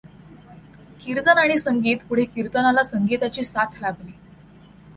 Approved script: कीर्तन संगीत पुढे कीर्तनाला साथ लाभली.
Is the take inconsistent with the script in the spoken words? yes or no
yes